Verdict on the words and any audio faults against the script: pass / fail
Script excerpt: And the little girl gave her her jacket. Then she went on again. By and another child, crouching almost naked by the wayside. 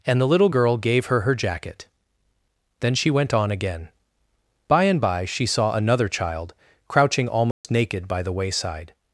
fail